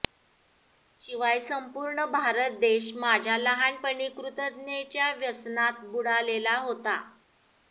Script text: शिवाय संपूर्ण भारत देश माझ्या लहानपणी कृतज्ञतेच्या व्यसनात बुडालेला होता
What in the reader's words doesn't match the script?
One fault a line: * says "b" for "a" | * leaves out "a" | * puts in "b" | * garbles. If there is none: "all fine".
all fine